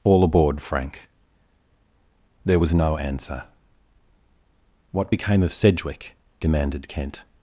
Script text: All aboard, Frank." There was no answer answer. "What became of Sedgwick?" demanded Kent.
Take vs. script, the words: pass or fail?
fail